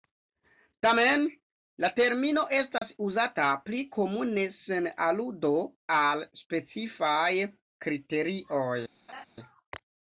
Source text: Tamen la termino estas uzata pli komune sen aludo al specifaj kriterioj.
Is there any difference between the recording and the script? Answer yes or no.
no